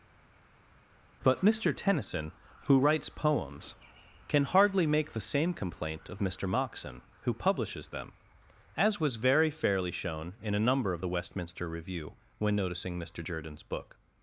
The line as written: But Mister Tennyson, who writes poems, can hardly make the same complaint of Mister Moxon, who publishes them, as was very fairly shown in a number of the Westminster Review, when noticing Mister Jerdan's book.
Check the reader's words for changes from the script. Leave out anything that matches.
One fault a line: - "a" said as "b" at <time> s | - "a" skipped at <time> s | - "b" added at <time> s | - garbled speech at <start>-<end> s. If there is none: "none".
none